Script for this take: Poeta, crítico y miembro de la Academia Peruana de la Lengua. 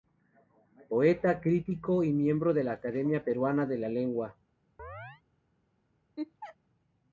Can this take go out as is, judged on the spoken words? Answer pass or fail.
pass